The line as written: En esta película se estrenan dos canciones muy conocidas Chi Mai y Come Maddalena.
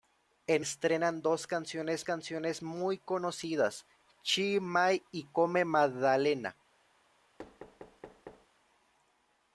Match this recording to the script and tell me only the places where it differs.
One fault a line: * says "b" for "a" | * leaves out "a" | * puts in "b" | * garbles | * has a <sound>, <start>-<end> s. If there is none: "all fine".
* leaves out "esta película se"
* puts in "canciones"
* has a thud, 7.4-8.5 s